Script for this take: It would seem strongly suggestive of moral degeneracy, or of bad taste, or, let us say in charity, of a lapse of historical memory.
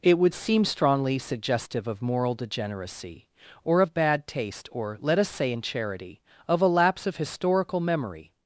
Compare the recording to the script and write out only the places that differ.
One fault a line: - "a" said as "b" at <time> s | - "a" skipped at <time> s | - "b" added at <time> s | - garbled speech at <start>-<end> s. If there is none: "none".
none